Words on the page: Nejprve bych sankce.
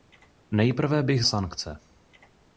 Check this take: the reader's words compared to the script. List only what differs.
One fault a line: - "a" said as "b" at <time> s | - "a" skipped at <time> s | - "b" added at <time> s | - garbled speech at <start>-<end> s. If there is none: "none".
none